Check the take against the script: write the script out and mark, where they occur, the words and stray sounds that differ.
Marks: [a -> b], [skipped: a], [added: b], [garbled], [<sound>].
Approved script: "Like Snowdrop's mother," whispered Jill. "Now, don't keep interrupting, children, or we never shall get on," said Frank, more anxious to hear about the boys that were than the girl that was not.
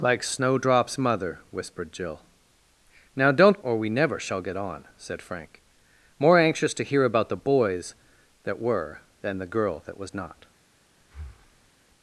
"Like Snowdrop's mother," whispered Jill. "Now, don't [skipped: keep interrupting, children,] or we never shall get on," said Frank, more anxious to hear about the boys that were than the girl that was not. [breath]